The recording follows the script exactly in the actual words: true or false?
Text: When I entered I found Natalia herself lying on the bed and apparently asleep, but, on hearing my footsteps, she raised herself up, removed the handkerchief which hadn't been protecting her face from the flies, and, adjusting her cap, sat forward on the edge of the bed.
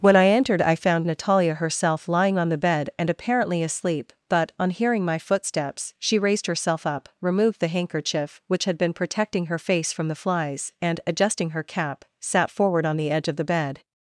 false